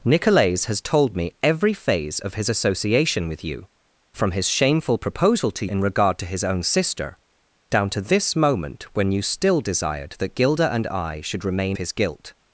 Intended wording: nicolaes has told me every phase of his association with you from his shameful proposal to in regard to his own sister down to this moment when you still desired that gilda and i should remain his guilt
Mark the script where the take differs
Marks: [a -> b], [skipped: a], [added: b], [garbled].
nicolaes has told me every phase of his association with you from his shameful proposal to in regard to his own sister down to this moment when you still desired that gilda and i should remain his guilt